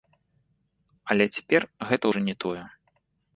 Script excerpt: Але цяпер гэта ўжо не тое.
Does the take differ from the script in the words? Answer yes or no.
no